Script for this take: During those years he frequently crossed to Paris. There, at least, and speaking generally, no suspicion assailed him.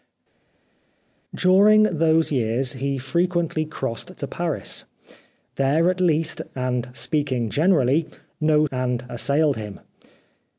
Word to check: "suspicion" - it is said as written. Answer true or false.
false